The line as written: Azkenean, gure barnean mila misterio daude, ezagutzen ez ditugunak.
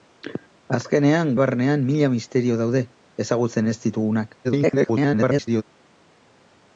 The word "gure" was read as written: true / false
false